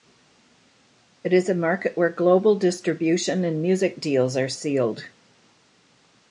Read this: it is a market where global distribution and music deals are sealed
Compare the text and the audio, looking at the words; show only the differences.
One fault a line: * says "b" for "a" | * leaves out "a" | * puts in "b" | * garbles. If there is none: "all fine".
all fine